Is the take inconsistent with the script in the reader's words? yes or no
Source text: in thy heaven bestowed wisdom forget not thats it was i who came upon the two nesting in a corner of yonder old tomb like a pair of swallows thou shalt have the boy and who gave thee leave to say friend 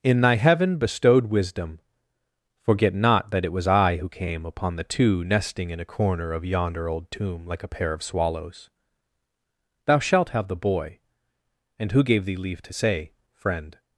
yes